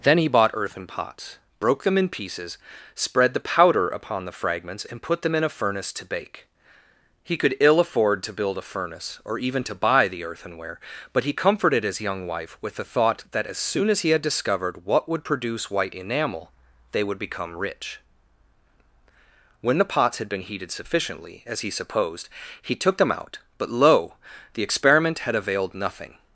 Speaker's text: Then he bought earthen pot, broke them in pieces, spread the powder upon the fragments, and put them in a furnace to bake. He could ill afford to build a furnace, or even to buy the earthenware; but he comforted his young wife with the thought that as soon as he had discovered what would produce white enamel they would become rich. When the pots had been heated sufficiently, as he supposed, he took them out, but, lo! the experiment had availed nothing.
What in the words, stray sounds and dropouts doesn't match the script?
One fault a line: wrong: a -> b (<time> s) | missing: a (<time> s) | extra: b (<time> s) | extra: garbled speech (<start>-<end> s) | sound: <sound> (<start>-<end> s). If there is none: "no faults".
wrong: pot -> pots (0.9 s)